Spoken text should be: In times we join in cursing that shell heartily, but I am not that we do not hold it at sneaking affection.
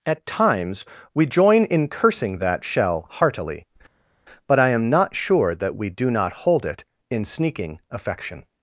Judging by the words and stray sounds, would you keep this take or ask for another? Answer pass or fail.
fail